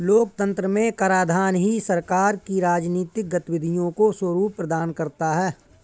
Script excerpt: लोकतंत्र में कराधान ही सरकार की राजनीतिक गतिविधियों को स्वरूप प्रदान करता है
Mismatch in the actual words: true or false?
false